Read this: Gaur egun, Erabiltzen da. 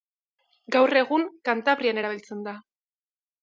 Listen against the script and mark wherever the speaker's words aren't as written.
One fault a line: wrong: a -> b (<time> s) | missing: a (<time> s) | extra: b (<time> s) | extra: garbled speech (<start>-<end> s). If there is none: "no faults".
extra: Kantabrian (1.5 s)